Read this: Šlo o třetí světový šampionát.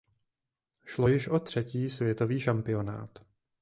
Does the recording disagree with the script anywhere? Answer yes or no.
yes